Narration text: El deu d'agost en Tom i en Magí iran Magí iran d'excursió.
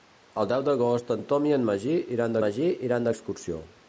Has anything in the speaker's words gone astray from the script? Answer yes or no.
no